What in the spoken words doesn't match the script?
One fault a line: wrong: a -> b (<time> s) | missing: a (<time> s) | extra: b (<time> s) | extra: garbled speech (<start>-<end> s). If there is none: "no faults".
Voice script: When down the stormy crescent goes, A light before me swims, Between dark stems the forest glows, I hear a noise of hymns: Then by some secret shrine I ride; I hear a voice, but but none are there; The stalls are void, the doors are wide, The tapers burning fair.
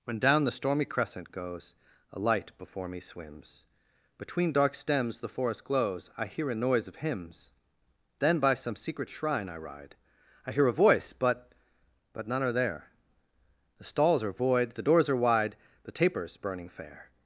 no faults